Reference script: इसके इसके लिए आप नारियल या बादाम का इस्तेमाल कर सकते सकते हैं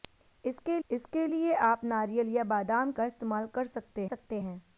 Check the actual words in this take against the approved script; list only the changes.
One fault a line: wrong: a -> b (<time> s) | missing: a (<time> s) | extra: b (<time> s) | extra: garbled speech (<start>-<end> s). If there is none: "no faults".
no faults